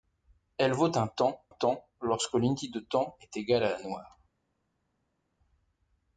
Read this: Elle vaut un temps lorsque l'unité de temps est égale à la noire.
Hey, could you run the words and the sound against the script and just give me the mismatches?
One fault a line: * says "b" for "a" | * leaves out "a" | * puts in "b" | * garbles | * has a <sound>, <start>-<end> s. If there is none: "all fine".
* puts in "temps"